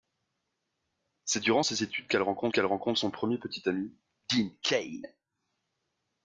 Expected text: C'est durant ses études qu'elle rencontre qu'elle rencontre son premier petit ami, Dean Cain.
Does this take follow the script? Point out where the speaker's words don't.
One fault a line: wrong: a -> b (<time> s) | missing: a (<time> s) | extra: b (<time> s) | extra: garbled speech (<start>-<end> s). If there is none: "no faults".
no faults